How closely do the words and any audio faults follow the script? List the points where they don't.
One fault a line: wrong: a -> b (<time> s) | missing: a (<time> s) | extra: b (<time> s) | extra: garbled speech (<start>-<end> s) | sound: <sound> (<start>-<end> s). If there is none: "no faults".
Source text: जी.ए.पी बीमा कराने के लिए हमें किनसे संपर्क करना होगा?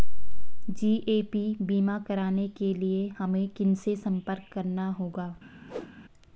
sound: whoosh (5.7-5.9 s)